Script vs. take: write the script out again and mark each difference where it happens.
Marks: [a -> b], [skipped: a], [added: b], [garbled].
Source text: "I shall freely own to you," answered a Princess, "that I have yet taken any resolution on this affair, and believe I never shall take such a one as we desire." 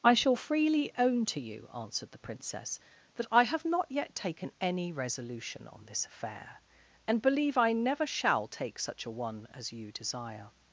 "I shall freely own to you," answered [a -> the] Princess, "that I have [added: not] yet taken any resolution on this affair, and believe I never shall take such a one as [we -> you] desire."